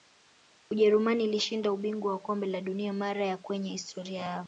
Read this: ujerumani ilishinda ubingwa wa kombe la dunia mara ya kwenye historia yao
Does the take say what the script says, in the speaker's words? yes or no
yes